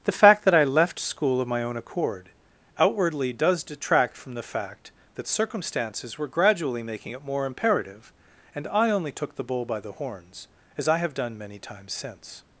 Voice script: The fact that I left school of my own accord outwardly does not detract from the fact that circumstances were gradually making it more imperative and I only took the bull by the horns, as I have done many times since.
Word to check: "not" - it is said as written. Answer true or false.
false